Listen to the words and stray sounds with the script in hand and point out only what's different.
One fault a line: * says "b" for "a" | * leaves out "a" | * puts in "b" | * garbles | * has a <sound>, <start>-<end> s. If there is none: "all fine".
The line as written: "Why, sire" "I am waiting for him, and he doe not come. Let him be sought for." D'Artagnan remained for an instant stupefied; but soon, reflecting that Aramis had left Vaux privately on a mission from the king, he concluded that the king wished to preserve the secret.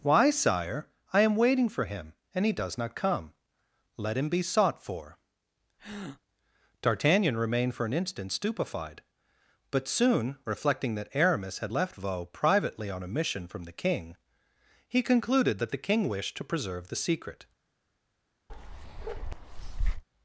* says "does" for "doe"
* has a breath, 5.8-6.2 s
* has a bark, 18.5-20.0 s